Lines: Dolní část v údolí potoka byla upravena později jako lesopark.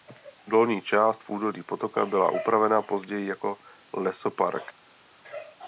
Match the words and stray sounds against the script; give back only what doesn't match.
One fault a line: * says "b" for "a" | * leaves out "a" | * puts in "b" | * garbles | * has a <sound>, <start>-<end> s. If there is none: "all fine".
all fine